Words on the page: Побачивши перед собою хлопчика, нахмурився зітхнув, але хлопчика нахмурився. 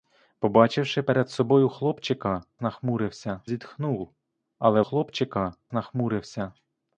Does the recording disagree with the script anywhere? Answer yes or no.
no